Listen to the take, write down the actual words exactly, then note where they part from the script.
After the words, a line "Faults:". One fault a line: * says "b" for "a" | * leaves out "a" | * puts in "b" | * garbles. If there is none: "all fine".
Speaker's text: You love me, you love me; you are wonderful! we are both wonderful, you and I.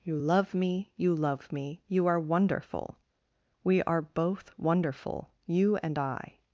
You love me, you love me; you are wonderful! we are both wonderful, you and I.
Faults:
all fine